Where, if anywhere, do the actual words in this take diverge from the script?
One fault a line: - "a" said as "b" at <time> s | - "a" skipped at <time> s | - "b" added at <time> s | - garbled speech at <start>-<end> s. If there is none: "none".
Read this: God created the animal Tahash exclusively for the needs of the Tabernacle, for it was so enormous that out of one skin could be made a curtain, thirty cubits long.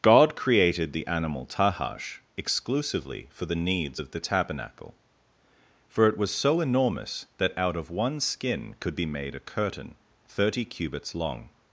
none